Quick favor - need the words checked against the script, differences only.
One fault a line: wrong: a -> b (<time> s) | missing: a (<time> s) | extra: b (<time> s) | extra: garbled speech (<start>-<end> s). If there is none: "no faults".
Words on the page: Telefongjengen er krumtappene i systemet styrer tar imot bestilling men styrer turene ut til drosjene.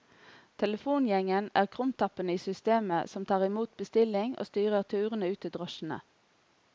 wrong: styrer -> som (3.1 s)
wrong: men -> og (4.4 s)